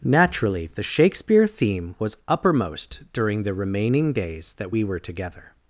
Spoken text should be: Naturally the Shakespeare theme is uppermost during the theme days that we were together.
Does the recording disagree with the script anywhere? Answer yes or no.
yes